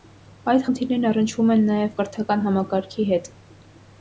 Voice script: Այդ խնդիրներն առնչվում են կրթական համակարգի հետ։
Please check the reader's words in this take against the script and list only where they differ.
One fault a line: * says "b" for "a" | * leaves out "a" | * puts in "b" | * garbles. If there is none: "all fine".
* puts in "նաև"